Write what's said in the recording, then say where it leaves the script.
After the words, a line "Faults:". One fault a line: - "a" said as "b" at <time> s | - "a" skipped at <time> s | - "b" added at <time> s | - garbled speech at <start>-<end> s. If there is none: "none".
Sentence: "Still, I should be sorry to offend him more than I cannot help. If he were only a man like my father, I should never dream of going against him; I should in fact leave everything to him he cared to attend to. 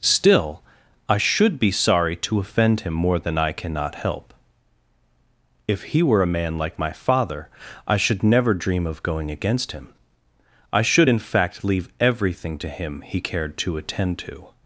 "Still, I should be sorry to offend him more than I cannot help. If he were a man like my father, I should never dream of going against him; I should in fact leave everything to him he cared to attend to.
Faults:
- "only" skipped at 6.2 s